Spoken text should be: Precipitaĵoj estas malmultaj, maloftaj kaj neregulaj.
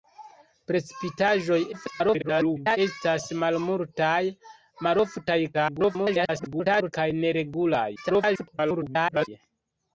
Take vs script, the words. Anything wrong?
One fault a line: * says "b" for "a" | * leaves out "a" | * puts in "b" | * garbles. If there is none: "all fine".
* garbles
* garbles
* garbles